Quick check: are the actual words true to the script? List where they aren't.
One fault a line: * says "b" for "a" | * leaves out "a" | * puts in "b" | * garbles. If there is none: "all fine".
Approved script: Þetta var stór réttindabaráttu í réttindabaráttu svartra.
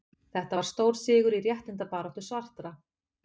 * says "sigur" for "réttindabaráttu"